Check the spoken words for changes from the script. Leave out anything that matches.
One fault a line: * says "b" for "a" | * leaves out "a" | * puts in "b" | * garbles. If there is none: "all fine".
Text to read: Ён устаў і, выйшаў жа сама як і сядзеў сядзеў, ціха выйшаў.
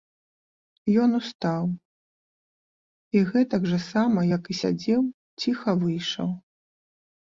* says "гэтак" for "выйшаў"
* leaves out "сядзеў"